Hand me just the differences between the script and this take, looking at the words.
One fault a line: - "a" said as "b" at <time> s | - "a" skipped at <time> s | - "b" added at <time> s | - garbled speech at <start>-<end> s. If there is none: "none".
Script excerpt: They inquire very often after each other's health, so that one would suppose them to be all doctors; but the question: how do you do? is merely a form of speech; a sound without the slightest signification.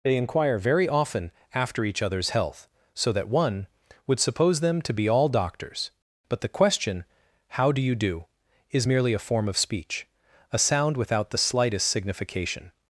none